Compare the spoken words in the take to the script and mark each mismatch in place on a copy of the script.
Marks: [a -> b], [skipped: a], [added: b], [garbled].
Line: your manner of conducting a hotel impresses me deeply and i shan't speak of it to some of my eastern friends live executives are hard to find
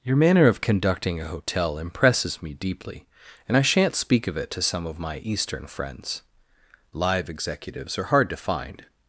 your manner of conducting a hotel impresses me deeply and i shan't speak of it to some of my eastern friends live executives are hard to find